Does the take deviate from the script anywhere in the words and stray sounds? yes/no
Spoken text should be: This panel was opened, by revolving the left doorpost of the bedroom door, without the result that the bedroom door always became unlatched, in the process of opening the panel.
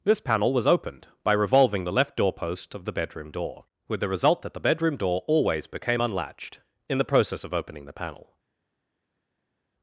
yes